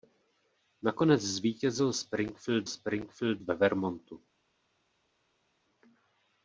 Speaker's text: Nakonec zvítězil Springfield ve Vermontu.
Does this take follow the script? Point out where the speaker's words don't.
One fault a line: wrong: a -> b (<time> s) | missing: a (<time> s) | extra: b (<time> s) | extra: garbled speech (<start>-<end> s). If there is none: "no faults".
extra: Springfield (2.7 s)